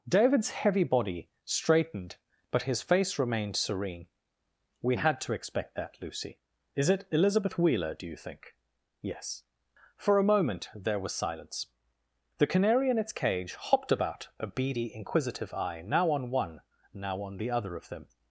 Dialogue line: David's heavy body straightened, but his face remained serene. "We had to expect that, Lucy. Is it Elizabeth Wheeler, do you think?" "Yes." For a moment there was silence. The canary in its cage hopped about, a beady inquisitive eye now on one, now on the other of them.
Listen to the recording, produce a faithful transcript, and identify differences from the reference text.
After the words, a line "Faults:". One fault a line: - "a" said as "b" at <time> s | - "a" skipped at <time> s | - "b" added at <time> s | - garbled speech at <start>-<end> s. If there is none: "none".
David's heavy body straightened, but his face remained serene. "We had to expect that, Lucy. Is it Elizabeth Wheeler, do you think?" "Yes." For a moment there was silence. The canary in its cage hopped about, a beady inquisitive eye now on one, now on the other of them.
Faults:
none